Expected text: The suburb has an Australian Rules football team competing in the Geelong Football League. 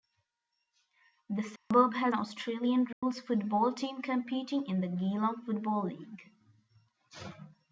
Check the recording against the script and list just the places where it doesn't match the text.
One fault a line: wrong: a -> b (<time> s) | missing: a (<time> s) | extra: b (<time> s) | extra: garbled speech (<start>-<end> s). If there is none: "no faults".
missing: an (2.1 s)